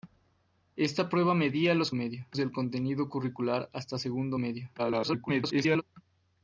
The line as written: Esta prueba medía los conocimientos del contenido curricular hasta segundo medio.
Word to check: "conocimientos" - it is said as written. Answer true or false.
false